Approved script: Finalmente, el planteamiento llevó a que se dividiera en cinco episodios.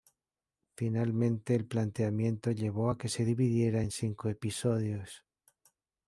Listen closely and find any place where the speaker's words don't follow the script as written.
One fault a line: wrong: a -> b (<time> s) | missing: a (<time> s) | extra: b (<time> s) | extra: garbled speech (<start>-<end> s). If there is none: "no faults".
no faults